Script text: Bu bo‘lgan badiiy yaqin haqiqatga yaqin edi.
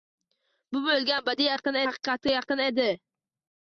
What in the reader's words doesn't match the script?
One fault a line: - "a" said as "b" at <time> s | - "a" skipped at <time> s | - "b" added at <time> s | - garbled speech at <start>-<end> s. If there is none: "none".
none